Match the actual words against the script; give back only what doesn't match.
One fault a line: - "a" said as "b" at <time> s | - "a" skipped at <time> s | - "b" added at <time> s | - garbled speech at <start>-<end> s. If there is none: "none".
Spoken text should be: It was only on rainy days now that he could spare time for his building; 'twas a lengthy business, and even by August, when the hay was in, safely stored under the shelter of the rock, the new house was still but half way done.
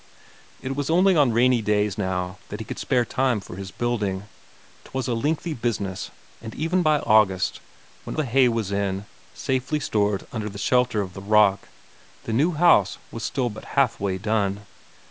none